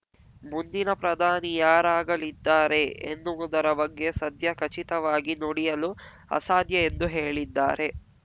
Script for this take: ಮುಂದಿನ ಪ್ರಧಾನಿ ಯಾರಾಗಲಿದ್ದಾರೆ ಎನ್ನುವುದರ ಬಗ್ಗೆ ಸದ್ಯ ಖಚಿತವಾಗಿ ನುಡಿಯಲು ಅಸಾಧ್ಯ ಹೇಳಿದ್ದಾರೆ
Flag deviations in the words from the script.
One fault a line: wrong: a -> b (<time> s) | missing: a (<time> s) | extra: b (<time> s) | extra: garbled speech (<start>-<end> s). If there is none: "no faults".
extra: ಎಂದು (6.9 s)